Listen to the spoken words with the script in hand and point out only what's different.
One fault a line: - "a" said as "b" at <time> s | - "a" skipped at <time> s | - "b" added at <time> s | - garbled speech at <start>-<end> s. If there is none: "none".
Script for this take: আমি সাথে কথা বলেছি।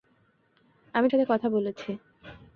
none